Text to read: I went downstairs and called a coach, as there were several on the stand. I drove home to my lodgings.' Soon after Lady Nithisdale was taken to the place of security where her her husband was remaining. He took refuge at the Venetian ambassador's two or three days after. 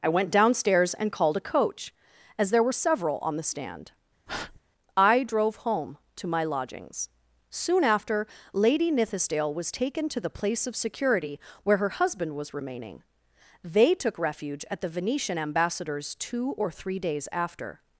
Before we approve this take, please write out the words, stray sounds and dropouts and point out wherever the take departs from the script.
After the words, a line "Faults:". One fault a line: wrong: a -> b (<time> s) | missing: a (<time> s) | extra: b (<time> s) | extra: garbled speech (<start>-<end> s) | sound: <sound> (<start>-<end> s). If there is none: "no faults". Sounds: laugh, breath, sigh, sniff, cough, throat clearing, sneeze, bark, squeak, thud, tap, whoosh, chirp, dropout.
I went downstairs and called a coach, as there were several on the stand. I drove home to my lodgings.' Soon after Lady Nithisdale was taken to the place of security where her husband was remaining. They took refuge at the Venetian ambassador's two or three days after.
Faults:
sound: breath (4.3-4.6 s)
missing: her (11.9 s)
wrong: He -> They (13.6 s)